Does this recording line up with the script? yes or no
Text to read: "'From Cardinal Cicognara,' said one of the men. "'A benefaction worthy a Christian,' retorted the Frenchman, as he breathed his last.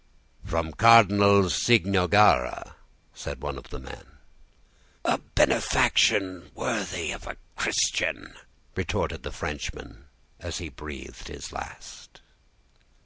no